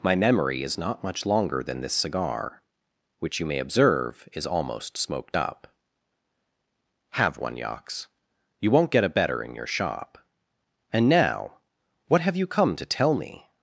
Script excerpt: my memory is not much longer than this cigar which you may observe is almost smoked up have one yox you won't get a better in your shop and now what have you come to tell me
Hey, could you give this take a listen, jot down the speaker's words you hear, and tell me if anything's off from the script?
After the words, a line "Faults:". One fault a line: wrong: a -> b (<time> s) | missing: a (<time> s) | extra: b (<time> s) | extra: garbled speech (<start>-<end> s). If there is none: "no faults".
my memory is not much longer than this cigar which you may observe is almost smoked up have one yox you won't get a better in your shop and now what have you come to tell me
Faults:
no faults